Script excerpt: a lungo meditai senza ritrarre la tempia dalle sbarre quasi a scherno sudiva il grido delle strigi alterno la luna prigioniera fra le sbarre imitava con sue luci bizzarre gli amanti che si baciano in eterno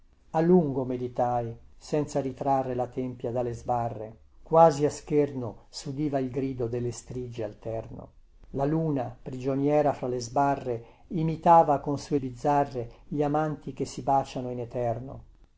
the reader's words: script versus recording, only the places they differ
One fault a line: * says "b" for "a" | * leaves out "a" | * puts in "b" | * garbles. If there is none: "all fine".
* leaves out "luci"